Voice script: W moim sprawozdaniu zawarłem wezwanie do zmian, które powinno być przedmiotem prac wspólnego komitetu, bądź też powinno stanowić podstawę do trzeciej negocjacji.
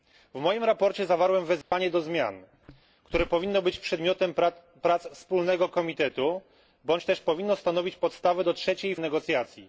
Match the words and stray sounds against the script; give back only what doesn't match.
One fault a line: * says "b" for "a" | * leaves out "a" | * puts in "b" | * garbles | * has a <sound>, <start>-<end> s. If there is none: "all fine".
* has a dropout, 1.6-1.7 s